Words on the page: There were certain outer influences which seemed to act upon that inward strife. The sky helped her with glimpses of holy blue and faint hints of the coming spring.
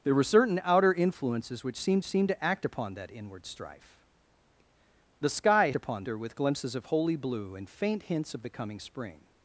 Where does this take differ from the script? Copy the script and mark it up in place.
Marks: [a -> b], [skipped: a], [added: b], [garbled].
There were certain outer influences which seemed [added: seemed] to act upon that inward strife. The sky [helped -> upon] her with glimpses of holy blue and faint hints of the coming spring.